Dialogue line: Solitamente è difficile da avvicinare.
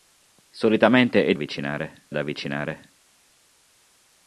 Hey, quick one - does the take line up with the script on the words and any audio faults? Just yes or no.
no